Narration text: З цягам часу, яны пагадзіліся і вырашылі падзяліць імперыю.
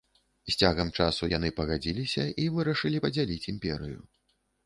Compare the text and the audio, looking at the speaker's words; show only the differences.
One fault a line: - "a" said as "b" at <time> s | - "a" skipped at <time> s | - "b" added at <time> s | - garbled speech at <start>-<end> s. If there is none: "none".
none